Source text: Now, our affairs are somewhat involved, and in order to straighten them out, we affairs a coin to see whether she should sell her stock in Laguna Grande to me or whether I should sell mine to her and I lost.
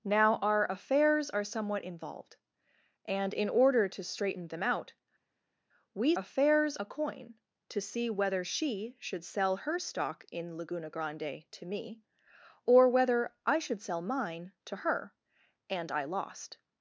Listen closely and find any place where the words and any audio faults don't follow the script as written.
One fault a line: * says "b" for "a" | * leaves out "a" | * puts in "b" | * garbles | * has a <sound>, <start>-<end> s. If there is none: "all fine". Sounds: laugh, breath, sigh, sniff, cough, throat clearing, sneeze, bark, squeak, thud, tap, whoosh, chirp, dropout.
all fine